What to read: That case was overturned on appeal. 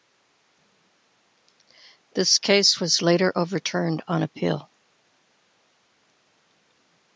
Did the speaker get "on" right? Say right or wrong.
right